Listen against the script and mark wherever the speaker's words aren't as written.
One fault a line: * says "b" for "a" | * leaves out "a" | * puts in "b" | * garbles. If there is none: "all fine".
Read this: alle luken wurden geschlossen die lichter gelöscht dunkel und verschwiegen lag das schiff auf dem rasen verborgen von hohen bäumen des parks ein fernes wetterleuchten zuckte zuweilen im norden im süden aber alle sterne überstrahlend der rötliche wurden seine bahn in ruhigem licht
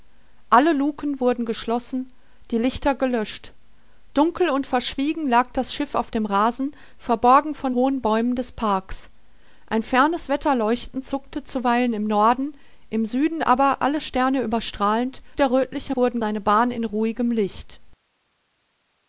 all fine